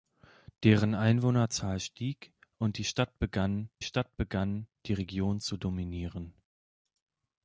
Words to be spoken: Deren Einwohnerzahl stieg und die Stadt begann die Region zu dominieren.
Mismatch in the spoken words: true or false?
true